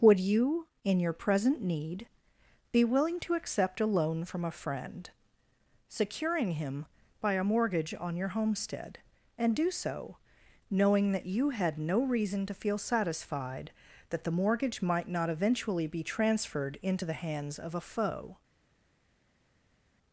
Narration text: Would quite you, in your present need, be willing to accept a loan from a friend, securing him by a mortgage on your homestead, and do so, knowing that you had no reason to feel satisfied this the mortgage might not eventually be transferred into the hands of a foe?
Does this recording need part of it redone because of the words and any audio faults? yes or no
yes